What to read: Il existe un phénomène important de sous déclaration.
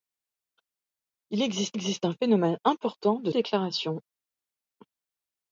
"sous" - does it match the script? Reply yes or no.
no